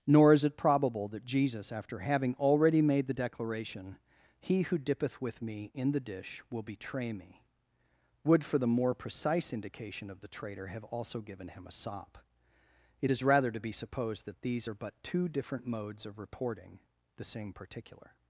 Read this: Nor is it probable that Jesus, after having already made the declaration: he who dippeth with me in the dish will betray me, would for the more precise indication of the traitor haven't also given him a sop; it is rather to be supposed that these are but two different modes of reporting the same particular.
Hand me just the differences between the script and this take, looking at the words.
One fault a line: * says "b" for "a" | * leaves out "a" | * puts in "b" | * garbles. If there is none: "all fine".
* says "have" for "haven't"